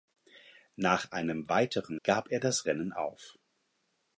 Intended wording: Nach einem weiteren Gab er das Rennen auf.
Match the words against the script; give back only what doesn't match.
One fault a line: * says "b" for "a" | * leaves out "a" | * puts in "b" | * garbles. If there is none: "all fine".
all fine